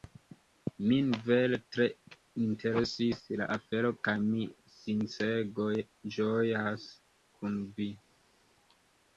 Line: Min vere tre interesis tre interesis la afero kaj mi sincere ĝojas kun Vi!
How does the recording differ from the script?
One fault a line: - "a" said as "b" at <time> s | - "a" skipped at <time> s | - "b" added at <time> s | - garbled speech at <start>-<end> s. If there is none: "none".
- "tre interesis" skipped at 3.2 s